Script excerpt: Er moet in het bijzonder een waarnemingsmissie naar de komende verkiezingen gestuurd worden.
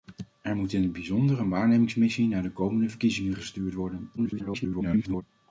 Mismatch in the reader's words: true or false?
true